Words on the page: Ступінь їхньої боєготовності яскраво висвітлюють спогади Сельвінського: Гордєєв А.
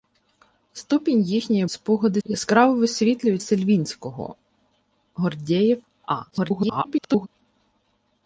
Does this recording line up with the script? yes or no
no